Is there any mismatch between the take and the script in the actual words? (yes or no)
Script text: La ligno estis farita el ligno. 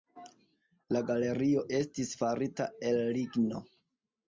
yes